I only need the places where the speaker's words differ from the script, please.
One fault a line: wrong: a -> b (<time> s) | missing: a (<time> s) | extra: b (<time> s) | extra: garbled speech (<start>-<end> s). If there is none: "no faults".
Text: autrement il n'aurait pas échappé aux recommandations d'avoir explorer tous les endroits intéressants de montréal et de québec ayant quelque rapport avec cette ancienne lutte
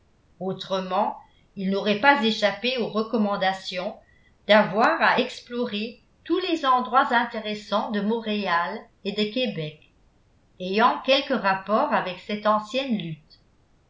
extra: à (5.0 s)